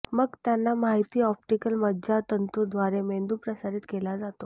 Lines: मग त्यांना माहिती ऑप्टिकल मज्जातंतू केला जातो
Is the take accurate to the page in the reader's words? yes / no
no